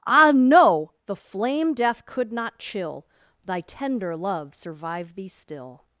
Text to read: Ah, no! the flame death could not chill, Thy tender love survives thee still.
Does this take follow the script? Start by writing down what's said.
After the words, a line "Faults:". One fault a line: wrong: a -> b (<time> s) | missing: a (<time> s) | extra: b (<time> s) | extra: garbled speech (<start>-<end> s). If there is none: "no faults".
Ah, no! the flame death could not chill, Thy tender love survive thee still.
Faults:
wrong: survives -> survive (4.5 s)